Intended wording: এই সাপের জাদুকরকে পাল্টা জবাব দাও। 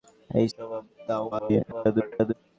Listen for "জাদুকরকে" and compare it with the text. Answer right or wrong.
wrong